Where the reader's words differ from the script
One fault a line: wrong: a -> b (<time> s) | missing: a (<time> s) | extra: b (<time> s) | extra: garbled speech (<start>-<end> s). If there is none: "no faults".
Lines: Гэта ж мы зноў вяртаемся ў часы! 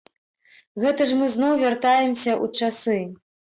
no faults